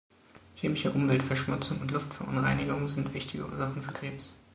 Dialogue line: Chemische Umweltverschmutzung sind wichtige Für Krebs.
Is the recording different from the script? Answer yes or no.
yes